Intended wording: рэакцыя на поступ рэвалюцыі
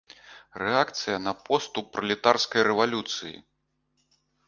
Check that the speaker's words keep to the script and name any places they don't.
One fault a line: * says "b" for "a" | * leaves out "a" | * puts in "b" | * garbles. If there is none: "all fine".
* puts in "пралетарскай"